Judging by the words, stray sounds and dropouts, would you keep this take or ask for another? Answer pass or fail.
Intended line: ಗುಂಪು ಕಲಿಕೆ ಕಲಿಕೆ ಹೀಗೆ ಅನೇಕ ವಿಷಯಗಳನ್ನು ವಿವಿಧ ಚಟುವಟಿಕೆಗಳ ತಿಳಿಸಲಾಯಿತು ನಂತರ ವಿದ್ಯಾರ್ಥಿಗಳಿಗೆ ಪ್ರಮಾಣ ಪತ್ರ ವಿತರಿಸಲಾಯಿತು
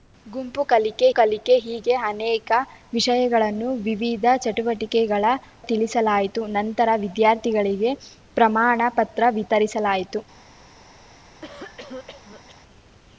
fail